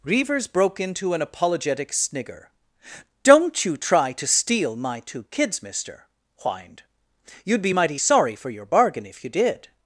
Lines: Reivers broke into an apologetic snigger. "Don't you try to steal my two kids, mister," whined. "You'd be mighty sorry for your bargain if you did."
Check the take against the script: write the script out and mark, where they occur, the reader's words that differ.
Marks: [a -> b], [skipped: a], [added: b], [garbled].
Reivers broke into an apologetic snigger. "Don't you try to steal my two kids, mister," whined. "You'd be mighty sorry for your bargain if you did."